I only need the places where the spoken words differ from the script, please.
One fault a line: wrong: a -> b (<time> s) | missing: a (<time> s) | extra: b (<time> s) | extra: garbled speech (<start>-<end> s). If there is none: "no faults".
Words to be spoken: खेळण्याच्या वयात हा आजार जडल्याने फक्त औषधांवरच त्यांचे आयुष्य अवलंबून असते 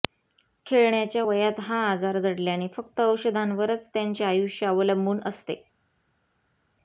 no faults